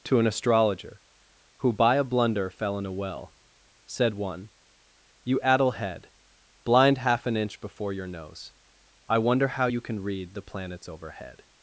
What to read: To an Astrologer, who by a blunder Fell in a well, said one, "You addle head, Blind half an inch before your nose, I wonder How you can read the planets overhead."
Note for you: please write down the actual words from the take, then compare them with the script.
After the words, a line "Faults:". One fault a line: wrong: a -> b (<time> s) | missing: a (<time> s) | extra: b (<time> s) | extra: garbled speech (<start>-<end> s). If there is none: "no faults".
To an Astrologer, who by a blunder Fell in a well, said one, "You addle head, Blind half an inch before your nose, I wonder How you can read the planets overhead."
Faults:
no faults